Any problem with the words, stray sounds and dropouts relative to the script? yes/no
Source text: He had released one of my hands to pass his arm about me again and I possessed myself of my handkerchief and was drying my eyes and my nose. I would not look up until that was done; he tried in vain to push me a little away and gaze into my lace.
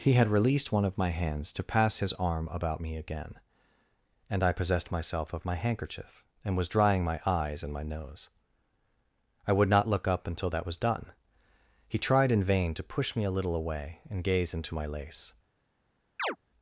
yes